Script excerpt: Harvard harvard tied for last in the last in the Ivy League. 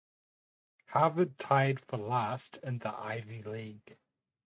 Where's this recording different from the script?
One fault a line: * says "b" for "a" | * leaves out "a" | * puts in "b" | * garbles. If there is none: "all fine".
* leaves out "harvard"
* leaves out "last in the"